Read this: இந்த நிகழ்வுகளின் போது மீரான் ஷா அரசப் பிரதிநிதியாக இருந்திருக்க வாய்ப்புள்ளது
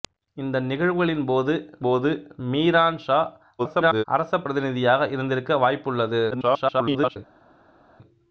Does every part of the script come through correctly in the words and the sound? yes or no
no